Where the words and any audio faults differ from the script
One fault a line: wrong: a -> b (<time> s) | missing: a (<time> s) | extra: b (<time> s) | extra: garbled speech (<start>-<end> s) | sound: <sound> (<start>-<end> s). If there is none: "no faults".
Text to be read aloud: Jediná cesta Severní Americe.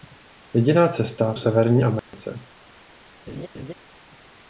sound: dropout (2.0-2.1 s)
sound: laugh (3.3-3.7 s)